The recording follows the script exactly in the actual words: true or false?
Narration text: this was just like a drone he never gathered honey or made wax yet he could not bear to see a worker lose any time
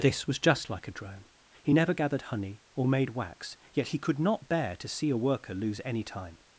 true